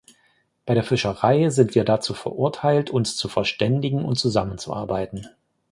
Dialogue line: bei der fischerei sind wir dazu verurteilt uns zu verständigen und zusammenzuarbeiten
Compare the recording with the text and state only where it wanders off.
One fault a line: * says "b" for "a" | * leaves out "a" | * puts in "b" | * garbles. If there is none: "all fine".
all fine